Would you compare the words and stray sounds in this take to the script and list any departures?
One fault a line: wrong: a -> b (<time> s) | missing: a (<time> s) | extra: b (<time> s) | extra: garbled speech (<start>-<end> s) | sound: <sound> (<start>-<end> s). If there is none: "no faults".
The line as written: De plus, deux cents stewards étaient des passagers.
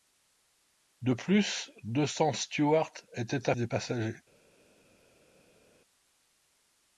no faults